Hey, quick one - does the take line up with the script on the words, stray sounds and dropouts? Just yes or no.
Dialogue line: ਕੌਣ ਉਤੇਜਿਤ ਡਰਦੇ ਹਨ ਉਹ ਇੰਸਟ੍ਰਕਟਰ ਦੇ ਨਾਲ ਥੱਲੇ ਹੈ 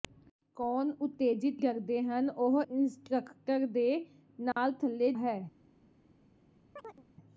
no